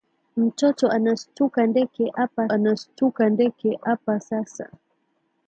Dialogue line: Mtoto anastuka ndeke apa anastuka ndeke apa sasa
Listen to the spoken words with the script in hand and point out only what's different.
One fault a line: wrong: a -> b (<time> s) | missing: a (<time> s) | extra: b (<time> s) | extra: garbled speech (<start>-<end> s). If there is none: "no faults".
no faults